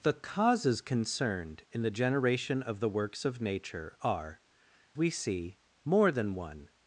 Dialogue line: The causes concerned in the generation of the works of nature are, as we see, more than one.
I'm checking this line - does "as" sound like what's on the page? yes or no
no